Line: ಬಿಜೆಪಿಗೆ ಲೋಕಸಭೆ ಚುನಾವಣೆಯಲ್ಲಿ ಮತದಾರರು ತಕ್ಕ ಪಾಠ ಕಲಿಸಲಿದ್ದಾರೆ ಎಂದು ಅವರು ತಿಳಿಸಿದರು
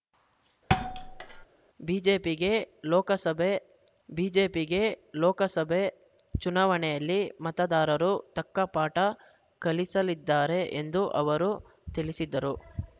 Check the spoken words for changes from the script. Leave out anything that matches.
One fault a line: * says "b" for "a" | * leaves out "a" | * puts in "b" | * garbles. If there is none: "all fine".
* puts in "ಬಿಜೆಪಿಗೆ ಲೋಕಸಭೆ"